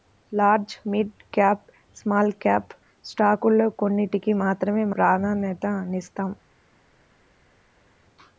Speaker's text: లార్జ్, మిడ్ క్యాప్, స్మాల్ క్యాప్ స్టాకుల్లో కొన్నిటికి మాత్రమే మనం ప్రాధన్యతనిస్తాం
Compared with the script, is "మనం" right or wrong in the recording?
wrong